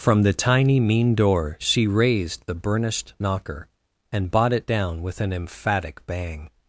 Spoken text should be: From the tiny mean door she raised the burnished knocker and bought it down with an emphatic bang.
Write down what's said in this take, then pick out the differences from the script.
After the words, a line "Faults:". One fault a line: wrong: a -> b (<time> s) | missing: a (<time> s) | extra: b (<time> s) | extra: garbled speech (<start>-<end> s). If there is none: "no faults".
From the tiny mean door she raised the burnished knocker and bought it down with an emphatic bang.
Faults:
no faults